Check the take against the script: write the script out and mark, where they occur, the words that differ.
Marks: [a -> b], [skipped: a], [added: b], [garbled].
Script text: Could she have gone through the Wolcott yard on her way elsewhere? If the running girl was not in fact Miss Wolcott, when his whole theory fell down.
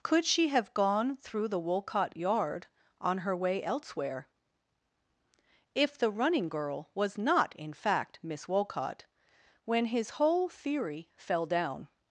Could she have gone through the Wolcott yard on her way elsewhere? If the running girl was not in fact Miss Wolcott, when his whole theory fell down.